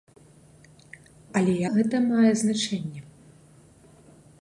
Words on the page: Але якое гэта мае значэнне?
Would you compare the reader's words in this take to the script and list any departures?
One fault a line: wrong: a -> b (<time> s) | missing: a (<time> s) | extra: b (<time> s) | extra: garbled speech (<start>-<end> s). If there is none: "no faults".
missing: якое (1.5 s)